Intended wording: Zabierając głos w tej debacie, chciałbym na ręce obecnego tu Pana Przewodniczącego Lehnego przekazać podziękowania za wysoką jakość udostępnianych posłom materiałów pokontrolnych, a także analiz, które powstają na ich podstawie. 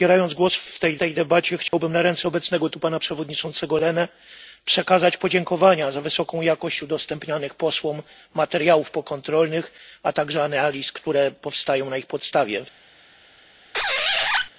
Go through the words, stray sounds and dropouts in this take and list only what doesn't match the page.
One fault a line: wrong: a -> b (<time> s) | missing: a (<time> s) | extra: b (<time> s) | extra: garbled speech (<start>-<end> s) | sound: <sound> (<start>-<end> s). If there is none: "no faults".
extra: tej (1.0 s)
sound: dropout (1.7-1.7 s)
sound: squeak (13.7-14.5 s)